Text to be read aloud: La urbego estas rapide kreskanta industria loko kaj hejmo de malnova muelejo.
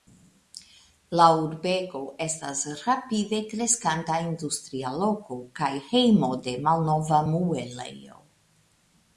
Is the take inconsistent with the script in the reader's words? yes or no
no